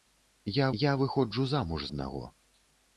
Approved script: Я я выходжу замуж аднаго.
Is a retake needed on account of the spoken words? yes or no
no